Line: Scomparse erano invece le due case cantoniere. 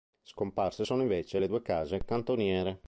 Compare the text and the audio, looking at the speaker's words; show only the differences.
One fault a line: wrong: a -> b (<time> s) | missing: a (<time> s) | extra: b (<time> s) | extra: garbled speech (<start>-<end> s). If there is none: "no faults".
wrong: erano -> sono (0.8 s)